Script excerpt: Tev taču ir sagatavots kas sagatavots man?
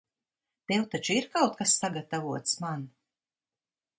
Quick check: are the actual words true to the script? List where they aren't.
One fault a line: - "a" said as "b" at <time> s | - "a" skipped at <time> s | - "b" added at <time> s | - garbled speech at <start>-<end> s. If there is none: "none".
- "sagatavots" said as "kaut" at 1.4 s